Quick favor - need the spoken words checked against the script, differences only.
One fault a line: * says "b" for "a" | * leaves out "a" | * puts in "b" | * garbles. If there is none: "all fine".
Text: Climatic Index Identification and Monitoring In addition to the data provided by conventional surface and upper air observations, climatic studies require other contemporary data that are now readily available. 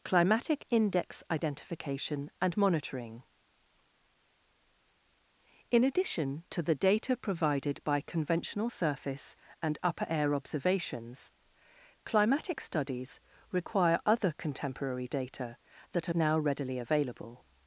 all fine